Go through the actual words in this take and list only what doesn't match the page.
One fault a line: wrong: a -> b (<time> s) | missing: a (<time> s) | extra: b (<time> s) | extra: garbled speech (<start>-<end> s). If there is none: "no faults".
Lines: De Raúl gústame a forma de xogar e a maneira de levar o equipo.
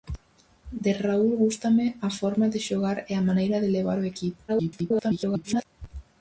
extra: garbled speech (4.5-5.7 s)